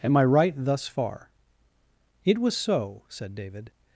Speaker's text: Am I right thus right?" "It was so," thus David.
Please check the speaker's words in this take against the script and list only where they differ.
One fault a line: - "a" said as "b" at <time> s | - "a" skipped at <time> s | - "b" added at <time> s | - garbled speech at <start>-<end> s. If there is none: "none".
- "right" said as "far" at 0.9 s
- "thus" said as "said" at 3.1 s